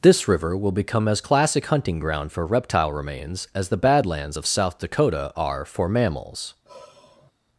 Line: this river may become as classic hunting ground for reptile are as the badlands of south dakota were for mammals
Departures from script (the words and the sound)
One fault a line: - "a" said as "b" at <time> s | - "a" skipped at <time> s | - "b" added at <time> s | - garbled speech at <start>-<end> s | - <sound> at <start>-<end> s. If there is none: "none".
- "may" said as "will" at 0.6 s
- "are" said as "remains" at 2.9 s
- "were" said as "are" at 5.4 s
- sigh at 6.7-7.3 s